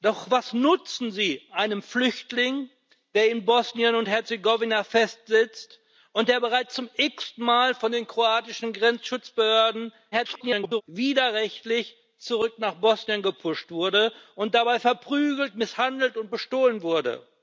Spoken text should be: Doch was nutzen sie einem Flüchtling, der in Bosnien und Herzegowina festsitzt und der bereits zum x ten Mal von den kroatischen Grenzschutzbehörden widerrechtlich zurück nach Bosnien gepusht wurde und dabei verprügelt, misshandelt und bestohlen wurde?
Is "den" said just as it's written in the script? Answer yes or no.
yes